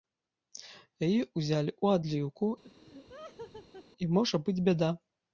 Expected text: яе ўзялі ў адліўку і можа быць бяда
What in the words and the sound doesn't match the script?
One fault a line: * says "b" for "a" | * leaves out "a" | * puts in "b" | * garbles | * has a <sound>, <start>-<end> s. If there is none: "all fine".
* has a laugh, 2.6-3.9 s